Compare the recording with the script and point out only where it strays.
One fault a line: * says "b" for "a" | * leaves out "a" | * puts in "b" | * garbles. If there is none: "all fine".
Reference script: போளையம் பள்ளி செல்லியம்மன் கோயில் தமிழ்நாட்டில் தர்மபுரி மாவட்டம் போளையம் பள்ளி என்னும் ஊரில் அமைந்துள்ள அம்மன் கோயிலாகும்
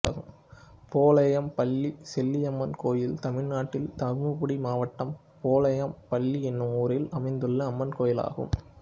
all fine